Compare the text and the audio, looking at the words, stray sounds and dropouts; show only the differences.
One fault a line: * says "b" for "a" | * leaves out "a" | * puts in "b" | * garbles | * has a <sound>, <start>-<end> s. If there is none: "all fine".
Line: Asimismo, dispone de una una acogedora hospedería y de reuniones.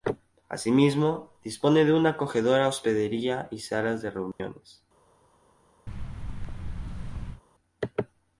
* leaves out "una"
* puts in "salas"
* has a dropout, 4.3-4.4 s
* has a thud, 5.9-7.4 s